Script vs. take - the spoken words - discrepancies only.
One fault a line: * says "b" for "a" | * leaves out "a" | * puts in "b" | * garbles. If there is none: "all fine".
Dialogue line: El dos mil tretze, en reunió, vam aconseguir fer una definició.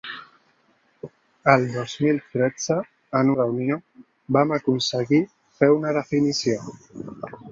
all fine